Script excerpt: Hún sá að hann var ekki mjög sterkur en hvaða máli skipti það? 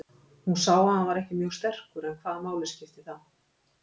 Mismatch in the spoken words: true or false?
false